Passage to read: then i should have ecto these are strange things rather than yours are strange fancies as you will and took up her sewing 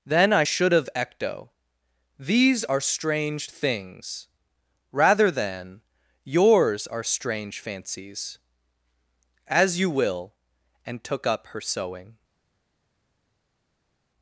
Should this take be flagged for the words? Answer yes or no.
no